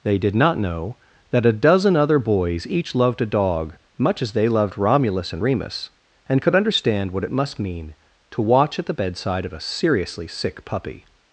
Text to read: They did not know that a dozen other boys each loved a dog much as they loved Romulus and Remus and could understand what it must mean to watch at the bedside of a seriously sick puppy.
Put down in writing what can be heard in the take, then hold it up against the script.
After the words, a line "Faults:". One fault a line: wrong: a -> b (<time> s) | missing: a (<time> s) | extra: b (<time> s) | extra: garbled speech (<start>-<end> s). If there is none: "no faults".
They did not know that a dozen other boys each loved a dog much as they loved Romulus and Remus and could understand what it must mean to watch at the bedside of a seriously sick puppy.
Faults:
no faults